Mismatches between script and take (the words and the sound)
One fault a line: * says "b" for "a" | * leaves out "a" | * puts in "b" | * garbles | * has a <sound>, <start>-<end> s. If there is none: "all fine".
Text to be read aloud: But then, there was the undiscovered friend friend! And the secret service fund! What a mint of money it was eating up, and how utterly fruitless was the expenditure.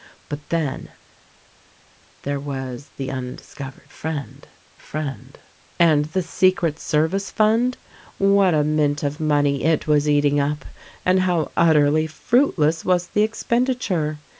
all fine